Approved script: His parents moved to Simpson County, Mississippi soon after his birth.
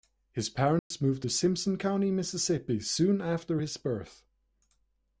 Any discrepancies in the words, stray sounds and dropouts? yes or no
yes